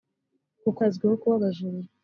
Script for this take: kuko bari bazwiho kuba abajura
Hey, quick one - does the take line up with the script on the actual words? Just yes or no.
no